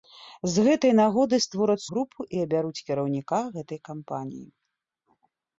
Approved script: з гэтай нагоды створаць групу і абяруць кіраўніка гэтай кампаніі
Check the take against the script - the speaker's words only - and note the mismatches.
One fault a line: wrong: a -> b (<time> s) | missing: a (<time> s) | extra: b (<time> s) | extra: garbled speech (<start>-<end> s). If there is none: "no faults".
no faults